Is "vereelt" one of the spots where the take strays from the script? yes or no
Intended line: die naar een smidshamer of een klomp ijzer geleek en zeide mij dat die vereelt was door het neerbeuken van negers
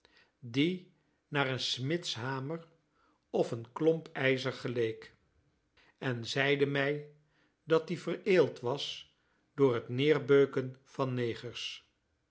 no